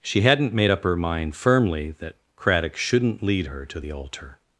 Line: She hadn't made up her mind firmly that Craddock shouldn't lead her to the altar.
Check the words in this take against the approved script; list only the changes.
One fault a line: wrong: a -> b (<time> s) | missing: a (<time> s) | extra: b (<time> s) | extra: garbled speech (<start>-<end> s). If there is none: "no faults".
no faults